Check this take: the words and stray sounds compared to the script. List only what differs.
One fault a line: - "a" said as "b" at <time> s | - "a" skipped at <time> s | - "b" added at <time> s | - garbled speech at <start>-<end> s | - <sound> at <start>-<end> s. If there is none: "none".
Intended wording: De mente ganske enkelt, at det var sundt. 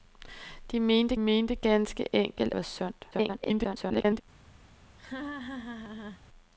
- "mente" added at 1.2 s
- "at det" skipped at 2.5 s
- garbled speech at 3.1-4.2 s
- laugh at 5.0-6.2 s